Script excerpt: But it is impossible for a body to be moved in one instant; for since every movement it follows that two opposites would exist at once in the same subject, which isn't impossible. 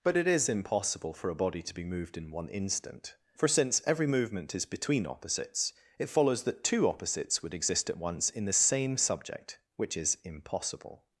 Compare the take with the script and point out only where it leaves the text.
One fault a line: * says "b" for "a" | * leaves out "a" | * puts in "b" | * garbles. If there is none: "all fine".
* puts in "is between opposites"
* says "is" for "isn't"